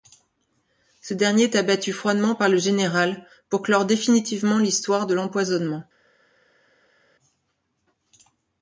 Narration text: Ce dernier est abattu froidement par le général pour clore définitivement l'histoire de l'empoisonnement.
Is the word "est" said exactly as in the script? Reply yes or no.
yes